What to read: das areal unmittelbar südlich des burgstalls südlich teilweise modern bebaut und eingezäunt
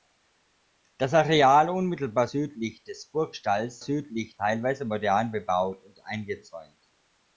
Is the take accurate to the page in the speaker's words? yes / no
yes